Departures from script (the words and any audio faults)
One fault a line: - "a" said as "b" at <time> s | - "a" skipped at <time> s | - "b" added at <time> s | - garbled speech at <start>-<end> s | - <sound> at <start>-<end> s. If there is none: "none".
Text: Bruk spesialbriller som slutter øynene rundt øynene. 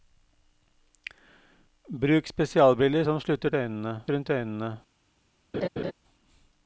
- laugh at 5.5-5.9 s